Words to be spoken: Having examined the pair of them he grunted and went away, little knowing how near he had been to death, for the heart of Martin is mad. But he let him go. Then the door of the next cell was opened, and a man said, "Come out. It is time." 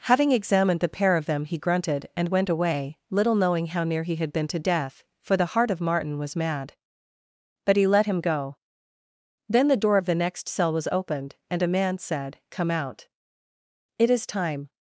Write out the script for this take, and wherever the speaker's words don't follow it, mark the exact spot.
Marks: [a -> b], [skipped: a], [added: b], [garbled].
Having examined the pair of them he grunted and went away, little knowing how near he had been to death, for the heart of Martin [is -> was] mad. But he let him go. Then the door of the next cell was opened, and a man said, "Come out. It is time."